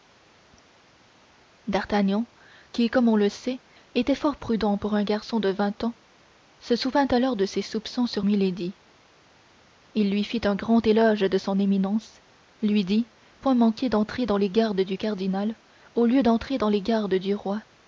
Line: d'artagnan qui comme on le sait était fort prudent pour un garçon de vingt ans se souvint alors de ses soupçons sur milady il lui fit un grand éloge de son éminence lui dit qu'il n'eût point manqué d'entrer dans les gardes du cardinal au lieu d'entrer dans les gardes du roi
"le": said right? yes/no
yes